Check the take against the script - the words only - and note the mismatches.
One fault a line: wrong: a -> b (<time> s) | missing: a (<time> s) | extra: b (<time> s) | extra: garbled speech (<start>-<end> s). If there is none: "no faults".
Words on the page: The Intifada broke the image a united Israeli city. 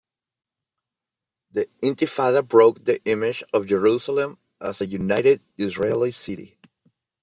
extra: of Jerusalem as (3.5 s)